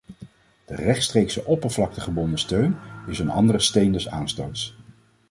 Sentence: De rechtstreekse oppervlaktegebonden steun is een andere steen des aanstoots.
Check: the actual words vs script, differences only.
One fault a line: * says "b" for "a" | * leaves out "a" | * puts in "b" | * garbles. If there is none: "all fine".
all fine